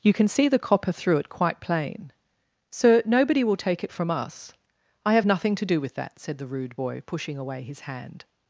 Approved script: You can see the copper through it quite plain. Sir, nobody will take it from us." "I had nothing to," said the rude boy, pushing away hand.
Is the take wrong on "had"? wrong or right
wrong